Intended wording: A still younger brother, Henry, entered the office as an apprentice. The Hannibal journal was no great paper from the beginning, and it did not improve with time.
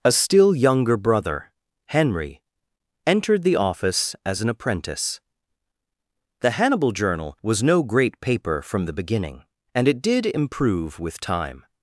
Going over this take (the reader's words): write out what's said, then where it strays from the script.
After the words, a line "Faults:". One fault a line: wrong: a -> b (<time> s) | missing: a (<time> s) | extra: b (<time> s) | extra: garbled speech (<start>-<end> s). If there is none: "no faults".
A still younger brother, Henry, entered the office as an apprentice. The Hannibal journal was no great paper from the beginning, and it did improve with time.
Faults:
missing: not (10.2 s)